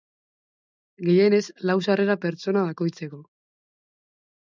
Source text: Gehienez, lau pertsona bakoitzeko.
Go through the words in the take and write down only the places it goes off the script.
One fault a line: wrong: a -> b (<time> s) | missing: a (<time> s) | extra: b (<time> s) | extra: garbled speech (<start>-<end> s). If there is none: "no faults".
extra: sarrera (1.9 s)